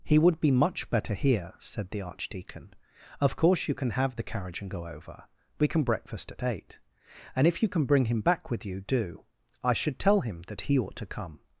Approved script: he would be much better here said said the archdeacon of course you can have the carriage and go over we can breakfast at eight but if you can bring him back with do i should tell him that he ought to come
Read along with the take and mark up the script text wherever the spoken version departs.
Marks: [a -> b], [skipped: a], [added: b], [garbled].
he would be much better here said [skipped: said] the archdeacon of course you can have the carriage and go over we can breakfast at eight [but -> and] if you can bring him back with [added: you] do i should tell him that he ought to come